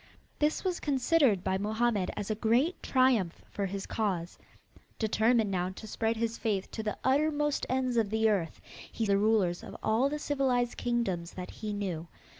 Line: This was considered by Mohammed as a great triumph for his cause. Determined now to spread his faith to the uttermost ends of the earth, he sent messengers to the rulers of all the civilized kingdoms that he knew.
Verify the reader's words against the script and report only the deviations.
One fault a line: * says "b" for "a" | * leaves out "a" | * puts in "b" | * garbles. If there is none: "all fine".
* leaves out "sent messengers to"